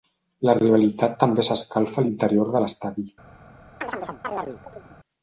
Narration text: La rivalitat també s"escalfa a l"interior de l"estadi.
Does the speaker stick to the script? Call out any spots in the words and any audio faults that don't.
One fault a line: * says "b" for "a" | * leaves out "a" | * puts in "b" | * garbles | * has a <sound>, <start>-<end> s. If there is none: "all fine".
* has a chirp, 3.8-5.0 s